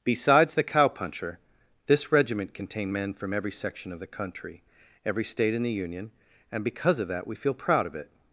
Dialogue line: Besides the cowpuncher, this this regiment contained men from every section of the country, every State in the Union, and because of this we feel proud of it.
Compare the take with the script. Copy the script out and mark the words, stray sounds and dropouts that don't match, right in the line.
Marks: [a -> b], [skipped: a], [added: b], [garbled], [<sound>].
Besides the cowpuncher, this [skipped: this] regiment contained men from every section of the country, every State in the Union, and because of [this -> that] we feel proud of it.